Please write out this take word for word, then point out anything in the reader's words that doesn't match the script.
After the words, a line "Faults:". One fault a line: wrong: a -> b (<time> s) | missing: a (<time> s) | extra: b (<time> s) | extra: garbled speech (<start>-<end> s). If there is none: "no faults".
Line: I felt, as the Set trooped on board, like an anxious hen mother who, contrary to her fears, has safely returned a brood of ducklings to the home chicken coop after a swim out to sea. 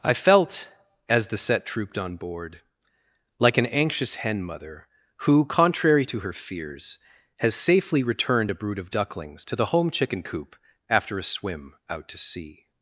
I felt, as the Set trooped on board, like an anxious hen mother who, contrary to her fears, has safely returned a brood of ducklings to the home chicken coop after a swim out to sea.
Faults:
no faults